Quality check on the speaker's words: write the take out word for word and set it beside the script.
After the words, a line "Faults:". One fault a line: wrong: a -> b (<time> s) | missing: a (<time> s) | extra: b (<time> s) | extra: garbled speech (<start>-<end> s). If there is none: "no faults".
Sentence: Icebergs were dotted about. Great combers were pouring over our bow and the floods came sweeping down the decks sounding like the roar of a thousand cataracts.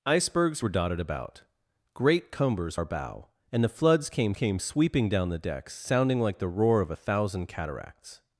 Icebergs were dotted about. Great combers our bow and the floods came came sweeping down the decks sounding like the roar of a thousand cataracts.
Faults:
missing: were pouring over (2.8 s)
extra: came (4.3 s)